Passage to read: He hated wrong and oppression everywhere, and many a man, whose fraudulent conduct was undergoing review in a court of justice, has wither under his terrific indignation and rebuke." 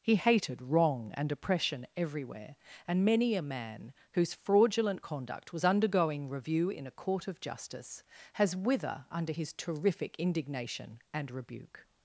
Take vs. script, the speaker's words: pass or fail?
pass